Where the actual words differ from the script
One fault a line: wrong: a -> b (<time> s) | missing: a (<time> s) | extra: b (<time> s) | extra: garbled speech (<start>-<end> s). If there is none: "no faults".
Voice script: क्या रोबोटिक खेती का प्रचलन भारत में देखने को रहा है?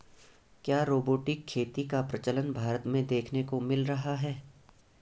extra: मिल (3.6 s)